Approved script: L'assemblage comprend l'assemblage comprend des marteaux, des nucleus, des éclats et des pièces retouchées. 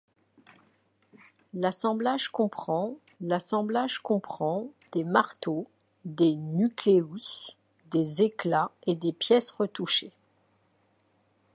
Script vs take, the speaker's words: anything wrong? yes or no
no